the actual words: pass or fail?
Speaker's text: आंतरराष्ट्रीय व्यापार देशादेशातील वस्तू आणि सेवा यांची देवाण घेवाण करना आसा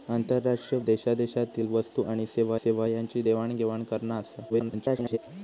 fail